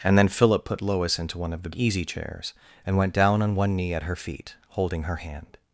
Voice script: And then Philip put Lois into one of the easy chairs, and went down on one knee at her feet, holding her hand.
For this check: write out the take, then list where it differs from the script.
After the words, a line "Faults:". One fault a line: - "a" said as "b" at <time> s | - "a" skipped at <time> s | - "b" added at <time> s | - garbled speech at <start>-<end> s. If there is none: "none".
And then Philip put Lois into one of the easy chairs, and went down on one knee at her feet, holding her hand.
Faults:
none